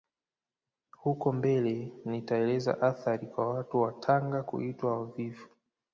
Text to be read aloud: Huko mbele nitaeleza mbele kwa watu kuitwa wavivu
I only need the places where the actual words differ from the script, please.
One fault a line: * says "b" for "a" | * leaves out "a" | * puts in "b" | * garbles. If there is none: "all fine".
* says "athari" for "mbele"
* puts in "wa Tanga"